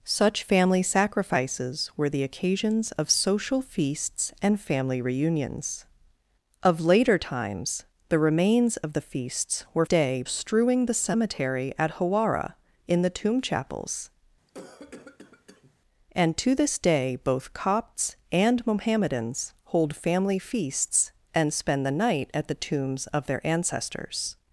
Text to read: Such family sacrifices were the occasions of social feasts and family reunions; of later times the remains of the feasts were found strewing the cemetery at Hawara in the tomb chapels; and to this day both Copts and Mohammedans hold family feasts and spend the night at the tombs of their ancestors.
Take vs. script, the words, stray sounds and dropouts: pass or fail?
fail